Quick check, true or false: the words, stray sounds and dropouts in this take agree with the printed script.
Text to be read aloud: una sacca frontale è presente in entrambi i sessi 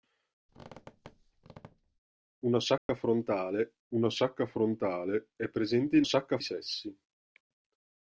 false